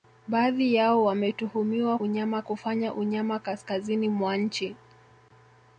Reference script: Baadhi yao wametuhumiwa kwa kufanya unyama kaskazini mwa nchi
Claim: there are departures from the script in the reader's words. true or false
true